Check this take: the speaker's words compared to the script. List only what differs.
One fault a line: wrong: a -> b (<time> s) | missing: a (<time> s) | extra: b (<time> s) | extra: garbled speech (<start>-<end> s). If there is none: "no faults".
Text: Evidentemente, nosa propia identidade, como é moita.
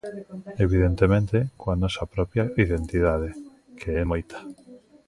extra: coa (1.6 s)
wrong: como -> que (3.8 s)